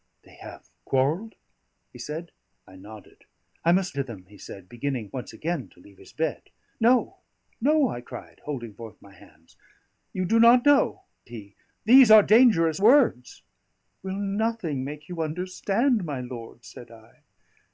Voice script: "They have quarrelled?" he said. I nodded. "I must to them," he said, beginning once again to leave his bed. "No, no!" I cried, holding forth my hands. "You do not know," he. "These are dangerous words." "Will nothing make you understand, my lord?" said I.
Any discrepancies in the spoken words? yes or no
no